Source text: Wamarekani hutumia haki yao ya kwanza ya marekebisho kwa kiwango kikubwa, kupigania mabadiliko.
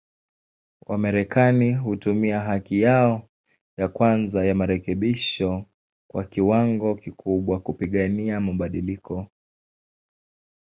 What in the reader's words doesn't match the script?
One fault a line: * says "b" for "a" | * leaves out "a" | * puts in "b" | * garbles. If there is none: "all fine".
all fine